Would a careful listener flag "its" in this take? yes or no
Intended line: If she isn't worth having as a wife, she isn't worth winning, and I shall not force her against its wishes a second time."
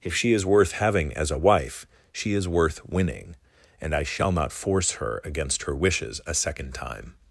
yes